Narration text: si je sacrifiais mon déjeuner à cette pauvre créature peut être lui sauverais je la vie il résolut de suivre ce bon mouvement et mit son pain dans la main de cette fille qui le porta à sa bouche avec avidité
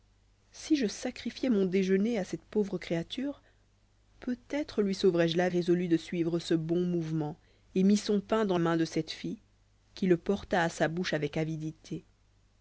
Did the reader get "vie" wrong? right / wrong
wrong